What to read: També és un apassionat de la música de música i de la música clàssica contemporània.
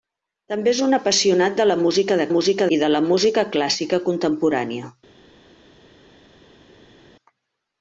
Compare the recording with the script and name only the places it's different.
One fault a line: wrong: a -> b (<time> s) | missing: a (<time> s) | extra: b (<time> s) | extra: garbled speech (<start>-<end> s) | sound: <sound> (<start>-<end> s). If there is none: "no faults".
no faults